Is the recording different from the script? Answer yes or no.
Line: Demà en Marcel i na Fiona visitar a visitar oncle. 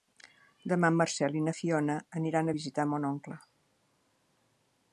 yes